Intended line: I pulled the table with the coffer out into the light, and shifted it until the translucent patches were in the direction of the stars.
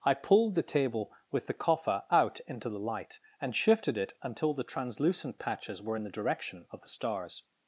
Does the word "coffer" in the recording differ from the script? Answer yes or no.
no